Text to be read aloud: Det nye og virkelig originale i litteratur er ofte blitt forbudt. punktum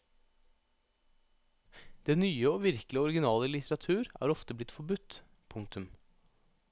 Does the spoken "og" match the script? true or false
true